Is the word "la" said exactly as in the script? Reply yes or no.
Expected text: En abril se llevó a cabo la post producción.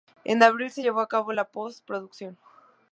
yes